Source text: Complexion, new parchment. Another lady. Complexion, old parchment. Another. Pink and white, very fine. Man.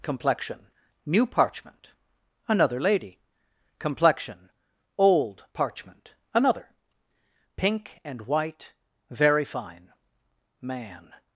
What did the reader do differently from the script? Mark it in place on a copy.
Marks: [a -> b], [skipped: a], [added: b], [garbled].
Complexion, new parchment. Another lady. Complexion, old parchment. Another. Pink and white, very fine. Man.